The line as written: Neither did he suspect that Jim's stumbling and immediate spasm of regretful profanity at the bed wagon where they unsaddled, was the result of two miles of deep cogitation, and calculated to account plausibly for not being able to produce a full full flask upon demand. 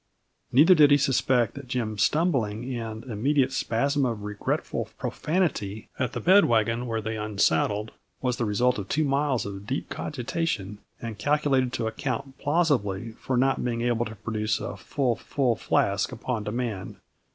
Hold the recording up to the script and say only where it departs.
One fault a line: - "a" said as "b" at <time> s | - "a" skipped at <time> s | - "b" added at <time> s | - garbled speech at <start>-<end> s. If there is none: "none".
none